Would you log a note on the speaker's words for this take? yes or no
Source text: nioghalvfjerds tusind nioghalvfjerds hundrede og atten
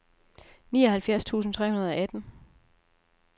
yes